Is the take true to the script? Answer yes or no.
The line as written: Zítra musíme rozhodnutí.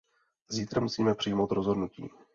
no